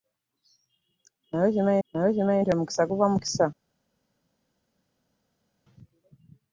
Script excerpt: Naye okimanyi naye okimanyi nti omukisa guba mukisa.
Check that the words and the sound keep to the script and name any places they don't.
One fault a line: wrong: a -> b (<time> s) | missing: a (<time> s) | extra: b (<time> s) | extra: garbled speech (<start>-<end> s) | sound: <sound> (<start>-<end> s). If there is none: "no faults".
no faults